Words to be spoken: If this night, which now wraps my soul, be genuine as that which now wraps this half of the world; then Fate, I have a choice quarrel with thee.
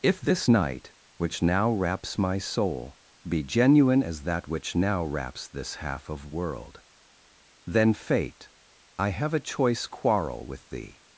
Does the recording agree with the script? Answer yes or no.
no